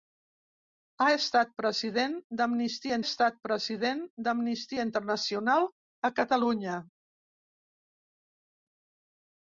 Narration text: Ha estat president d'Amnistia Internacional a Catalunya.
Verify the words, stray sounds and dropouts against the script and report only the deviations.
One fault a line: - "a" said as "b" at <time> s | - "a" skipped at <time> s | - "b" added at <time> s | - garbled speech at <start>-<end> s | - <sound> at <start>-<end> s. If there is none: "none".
- "estat president d'Amnistia" added at 3.0 s